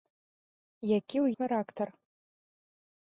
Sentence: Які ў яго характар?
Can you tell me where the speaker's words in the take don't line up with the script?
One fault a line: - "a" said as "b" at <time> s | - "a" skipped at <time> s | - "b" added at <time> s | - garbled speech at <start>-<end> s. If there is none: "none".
- "яго" skipped at 1.3 s